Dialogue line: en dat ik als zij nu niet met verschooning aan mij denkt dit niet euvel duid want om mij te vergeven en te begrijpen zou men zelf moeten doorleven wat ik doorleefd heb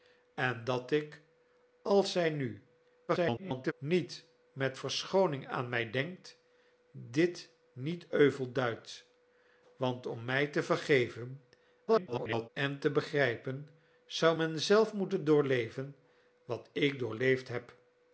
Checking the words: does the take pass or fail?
fail